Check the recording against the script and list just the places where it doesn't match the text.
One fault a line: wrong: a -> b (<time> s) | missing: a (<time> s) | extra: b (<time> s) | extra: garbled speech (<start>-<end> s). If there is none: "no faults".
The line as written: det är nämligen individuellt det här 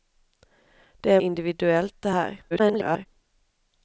missing: nämligen (1.2 s)
extra: garbled speech (2.5-3.1 s)